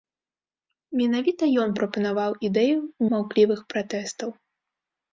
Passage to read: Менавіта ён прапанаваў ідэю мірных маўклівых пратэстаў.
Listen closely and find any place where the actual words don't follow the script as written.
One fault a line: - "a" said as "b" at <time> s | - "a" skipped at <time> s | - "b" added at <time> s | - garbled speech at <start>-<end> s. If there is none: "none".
- "мірных" skipped at 2.8 s